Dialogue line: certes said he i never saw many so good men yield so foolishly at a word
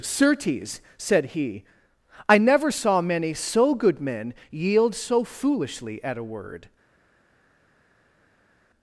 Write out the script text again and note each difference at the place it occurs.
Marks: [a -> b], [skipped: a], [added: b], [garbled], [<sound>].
certes said he i never saw many so good men yield so foolishly at a word